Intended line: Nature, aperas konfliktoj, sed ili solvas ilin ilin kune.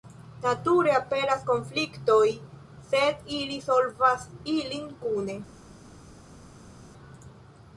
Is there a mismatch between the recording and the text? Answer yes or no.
yes